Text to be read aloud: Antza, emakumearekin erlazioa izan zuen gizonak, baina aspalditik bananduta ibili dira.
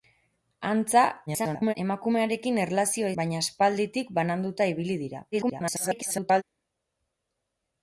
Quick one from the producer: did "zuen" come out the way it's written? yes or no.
no